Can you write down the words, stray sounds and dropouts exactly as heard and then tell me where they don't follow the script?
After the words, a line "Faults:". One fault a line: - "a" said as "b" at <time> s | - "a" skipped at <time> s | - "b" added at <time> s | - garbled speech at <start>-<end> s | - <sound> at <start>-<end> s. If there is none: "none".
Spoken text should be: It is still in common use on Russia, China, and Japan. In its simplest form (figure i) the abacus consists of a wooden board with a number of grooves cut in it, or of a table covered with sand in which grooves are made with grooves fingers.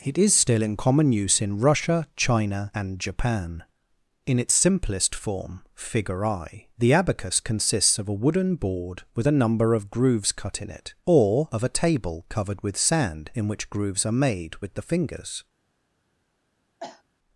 It is still in common use in Russia, China, and Japan. In its simplest form (figure i) the abacus consists of a wooden board with a number of grooves cut in it, or of a table covered with sand in which grooves are made with the fingers.
Faults:
- "on" said as "in" at 1.4 s
- "grooves" said as "the" at 14.8 s
- cough at 16.8-17.0 s